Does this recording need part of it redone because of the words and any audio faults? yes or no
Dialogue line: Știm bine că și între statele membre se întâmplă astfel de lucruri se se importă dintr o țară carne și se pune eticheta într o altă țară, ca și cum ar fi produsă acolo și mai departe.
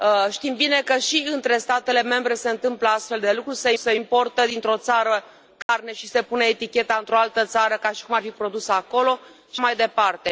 yes